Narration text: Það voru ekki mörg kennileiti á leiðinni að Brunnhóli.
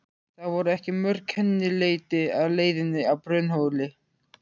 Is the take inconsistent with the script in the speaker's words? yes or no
no